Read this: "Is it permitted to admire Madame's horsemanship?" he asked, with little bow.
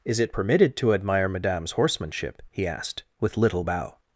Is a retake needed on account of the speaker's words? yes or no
no